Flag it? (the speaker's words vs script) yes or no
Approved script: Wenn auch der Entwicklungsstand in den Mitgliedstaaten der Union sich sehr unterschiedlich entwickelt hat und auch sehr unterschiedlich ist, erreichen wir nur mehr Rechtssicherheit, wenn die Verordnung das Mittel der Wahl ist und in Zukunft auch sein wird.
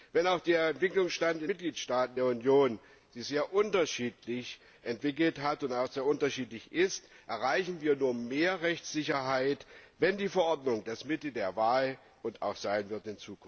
yes